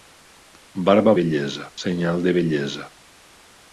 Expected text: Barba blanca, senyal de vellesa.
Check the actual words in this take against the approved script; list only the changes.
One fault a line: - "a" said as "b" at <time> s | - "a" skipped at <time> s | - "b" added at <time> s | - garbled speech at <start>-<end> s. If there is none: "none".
- "blanca" said as "vellesa" at 1.2 s